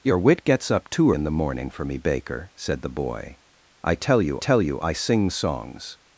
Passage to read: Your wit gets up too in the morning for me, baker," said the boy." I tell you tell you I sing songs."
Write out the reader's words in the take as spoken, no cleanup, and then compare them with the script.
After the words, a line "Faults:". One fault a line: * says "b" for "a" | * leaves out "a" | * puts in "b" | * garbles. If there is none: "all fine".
Your wit gets up too in the morning for me, baker," said the boy." I tell you tell you I sing songs."
Faults:
all fine